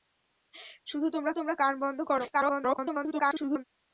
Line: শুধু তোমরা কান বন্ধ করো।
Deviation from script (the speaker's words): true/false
true